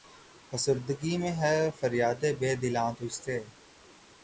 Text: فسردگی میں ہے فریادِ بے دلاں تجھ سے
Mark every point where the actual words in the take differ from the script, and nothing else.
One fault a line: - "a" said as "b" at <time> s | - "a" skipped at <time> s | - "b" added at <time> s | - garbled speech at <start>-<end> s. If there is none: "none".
none